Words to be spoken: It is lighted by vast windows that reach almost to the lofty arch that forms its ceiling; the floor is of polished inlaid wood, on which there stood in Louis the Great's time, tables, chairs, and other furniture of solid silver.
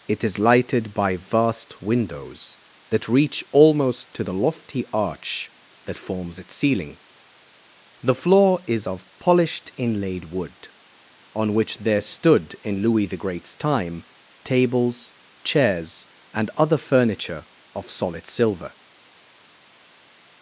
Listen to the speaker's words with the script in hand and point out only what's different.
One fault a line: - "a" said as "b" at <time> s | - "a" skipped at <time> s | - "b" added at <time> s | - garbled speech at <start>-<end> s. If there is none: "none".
none